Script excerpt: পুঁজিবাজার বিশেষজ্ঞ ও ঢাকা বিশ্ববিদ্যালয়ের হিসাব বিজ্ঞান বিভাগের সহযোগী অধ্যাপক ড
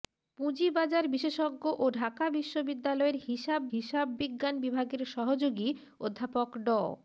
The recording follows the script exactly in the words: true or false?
false